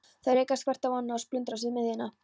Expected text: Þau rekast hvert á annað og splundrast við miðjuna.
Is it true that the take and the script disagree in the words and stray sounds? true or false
false